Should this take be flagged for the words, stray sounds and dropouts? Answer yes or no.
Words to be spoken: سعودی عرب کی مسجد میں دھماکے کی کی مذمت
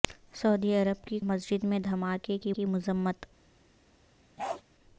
yes